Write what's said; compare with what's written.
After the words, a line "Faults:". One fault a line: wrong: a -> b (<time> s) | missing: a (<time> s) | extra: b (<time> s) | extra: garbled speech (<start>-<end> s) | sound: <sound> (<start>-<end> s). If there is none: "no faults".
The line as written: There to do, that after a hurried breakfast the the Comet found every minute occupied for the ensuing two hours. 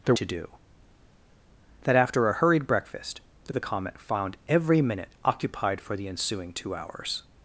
There to do, that after a hurried breakfast the the Comet found every minute occupied for the ensuing two hours.
Faults:
no faults